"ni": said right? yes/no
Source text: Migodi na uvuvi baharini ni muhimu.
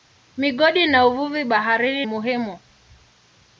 no